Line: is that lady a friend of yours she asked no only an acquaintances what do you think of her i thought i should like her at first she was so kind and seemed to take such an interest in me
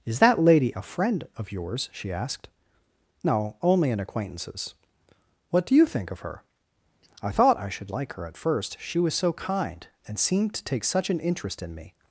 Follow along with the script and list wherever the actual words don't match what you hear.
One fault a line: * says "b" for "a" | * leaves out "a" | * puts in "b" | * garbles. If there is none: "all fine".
all fine